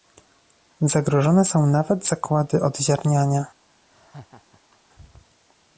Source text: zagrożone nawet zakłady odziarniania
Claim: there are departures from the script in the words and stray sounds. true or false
true